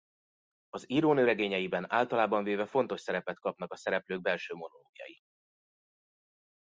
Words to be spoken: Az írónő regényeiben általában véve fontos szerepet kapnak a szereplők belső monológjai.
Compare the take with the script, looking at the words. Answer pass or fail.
pass